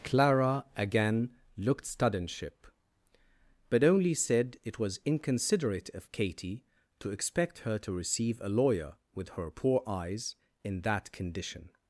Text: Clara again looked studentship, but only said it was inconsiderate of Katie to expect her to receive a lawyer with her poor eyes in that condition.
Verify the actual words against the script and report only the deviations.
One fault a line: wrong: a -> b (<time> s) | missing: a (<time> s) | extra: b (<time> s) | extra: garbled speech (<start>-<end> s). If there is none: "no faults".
no faults